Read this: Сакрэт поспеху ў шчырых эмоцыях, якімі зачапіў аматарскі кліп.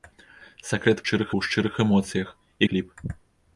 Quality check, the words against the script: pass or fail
fail